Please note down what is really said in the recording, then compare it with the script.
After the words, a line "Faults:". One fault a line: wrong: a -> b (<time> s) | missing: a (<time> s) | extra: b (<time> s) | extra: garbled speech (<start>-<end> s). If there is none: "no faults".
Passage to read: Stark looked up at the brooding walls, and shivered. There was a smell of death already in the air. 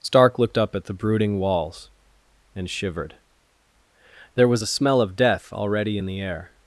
Stark looked up at the brooding walls, and shivered. There was a smell of death already in the air.
Faults:
no faults